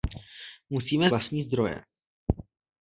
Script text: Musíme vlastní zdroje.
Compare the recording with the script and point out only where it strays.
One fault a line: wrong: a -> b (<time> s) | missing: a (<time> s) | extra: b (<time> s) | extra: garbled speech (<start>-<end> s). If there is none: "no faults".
no faults